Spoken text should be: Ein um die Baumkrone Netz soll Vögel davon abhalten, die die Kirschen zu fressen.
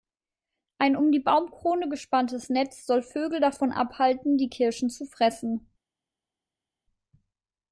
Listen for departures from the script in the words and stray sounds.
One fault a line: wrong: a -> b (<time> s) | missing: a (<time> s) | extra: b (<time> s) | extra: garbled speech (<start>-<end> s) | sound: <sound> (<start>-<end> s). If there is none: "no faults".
extra: gespanntes (1.9 s)
missing: die (4.5 s)